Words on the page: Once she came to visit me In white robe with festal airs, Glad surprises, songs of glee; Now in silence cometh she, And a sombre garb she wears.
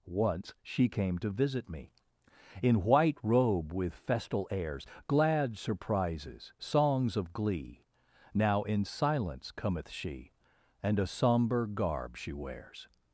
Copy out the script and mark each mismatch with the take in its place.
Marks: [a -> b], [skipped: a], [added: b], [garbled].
Once she came to visit me In white robe with festal airs, Glad surprises, songs of glee; Now in silence cometh she, And a sombre garb she wears.